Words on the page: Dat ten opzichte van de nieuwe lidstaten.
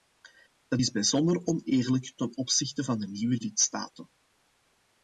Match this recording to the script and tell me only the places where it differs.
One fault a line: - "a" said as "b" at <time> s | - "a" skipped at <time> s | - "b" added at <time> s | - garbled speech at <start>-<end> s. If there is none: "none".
- "is bijzonder oneerlijk" added at 0.8 s